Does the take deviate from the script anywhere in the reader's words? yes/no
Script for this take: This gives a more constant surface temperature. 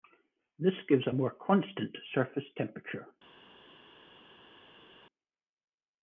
no